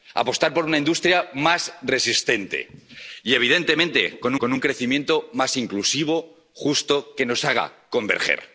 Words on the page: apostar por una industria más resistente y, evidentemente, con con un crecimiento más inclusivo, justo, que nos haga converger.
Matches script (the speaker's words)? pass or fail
pass